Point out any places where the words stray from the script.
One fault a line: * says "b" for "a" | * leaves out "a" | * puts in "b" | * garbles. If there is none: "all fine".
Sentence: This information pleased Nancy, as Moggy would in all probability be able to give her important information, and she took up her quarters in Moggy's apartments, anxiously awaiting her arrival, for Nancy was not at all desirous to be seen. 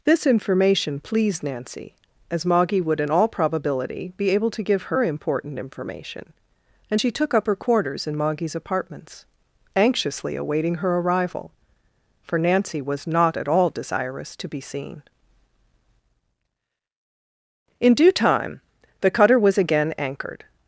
* puts in "In due time the cutter was again anchored"